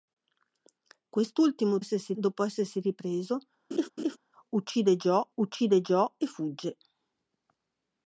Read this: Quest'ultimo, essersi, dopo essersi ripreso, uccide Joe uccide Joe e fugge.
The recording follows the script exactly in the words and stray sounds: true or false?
false